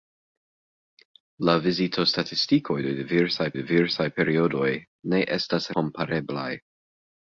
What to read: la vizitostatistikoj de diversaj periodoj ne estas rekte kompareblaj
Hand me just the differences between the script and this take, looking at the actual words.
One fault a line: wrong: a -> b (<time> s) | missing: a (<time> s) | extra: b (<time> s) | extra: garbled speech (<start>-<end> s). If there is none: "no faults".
extra: diversaj (3.6 s)
missing: rekte (5.7 s)